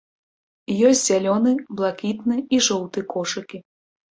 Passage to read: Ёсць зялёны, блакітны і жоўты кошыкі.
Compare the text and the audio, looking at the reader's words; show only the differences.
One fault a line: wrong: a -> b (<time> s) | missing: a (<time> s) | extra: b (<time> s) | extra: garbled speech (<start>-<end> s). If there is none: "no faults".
no faults